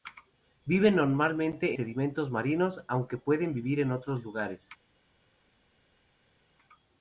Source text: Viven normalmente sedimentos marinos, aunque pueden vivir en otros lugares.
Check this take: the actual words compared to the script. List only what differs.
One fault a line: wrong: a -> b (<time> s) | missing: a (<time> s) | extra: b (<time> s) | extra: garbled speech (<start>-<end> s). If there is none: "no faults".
no faults